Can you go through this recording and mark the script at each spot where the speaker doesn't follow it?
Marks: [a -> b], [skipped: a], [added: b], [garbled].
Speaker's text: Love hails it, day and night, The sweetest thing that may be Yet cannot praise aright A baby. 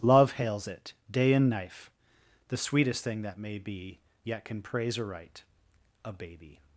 Love hails it, day and [night, -> knife] The sweetest thing that may be Yet [cannot -> can] praise aright A baby.